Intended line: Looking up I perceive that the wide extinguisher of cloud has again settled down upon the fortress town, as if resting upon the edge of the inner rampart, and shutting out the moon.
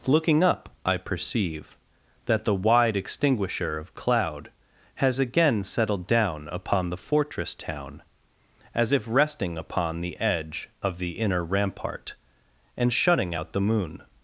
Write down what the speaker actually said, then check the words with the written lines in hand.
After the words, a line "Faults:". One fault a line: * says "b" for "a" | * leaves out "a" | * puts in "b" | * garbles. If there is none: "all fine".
Looking up I perceive that the wide extinguisher of cloud has again settled down upon the fortress town, as if resting upon the edge of the inner rampart, and shutting out the moon.
Faults:
all fine